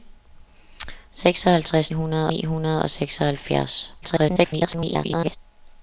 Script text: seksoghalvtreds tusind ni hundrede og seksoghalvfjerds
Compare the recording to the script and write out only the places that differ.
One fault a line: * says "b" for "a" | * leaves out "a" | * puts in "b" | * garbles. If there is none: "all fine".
* says "hundrede" for "tusind"
* garbles